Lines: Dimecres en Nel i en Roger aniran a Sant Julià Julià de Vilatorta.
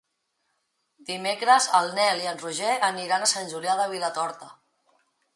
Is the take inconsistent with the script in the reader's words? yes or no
yes